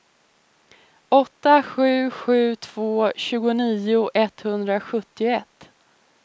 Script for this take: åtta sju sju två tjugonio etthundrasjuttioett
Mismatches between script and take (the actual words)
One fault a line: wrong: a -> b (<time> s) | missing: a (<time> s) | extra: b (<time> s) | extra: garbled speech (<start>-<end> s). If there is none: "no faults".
no faults